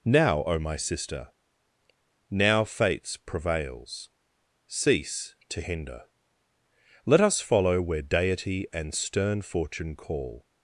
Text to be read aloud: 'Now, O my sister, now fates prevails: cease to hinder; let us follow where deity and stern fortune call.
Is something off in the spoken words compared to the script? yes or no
no